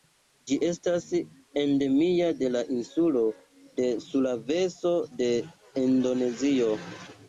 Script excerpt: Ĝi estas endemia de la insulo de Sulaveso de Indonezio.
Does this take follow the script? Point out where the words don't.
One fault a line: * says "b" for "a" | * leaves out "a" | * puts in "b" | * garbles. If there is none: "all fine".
all fine